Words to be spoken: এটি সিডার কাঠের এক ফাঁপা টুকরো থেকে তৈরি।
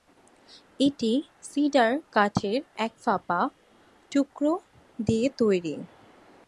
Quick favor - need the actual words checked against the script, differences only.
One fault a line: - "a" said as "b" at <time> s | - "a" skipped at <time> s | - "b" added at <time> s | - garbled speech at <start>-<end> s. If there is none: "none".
- "থেকে" said as "দিয়ে" at 5.0 s